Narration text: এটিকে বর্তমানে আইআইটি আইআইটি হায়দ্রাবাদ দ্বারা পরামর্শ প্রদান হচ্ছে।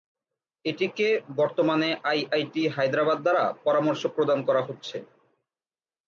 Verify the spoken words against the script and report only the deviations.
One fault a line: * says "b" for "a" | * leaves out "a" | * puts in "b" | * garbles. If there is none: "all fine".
* leaves out "আইআইটি"
* puts in "করা"